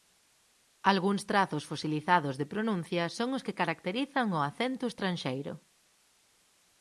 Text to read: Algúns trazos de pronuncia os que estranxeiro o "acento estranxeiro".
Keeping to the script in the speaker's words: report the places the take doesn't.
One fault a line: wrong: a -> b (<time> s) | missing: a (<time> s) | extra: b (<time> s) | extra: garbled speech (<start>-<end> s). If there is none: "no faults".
extra: fosilizados (1.7 s)
extra: son (3.2 s)
wrong: estranxeiro -> caracterizan (3.6 s)